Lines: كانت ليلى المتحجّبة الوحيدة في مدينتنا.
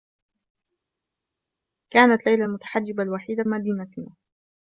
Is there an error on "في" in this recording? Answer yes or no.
yes